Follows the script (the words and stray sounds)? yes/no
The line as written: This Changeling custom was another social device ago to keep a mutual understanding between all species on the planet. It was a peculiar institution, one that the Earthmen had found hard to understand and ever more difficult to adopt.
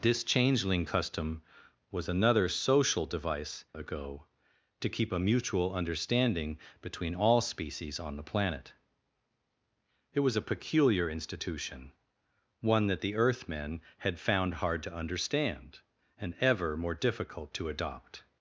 yes